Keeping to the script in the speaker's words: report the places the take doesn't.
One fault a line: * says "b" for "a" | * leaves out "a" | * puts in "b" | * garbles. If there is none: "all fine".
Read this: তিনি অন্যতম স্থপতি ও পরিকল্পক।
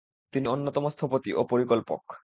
all fine